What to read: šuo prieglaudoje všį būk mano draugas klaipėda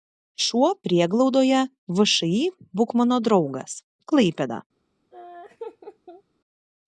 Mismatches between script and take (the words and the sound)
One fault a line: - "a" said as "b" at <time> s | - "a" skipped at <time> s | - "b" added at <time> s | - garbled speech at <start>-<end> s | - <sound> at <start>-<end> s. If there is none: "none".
- laugh at 5.1-6.2 s